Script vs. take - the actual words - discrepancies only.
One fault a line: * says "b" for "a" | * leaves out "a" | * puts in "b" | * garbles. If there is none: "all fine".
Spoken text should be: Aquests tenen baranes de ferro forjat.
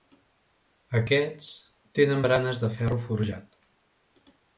all fine